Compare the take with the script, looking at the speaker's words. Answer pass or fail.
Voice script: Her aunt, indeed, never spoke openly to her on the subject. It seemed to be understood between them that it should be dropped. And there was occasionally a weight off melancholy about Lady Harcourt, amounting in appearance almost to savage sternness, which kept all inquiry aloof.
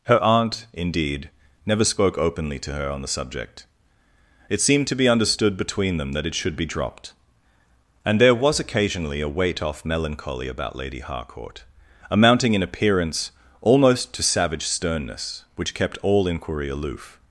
pass